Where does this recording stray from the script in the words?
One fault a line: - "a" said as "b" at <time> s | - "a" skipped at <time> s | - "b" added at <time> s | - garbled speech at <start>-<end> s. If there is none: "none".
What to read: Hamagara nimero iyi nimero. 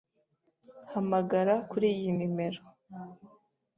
- "nimero" said as "kuri" at 1.7 s